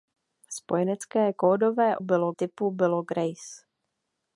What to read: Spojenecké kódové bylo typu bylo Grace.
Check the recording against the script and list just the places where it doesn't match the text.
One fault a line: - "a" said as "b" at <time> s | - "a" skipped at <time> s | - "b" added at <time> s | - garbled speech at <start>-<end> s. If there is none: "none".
none